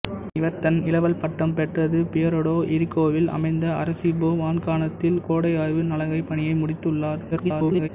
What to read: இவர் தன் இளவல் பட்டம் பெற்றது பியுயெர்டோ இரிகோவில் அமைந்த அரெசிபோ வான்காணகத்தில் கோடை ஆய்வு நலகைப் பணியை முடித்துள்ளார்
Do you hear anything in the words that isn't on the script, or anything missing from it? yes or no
yes